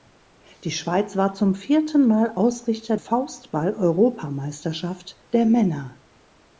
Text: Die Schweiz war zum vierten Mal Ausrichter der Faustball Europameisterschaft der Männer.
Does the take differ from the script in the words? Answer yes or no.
yes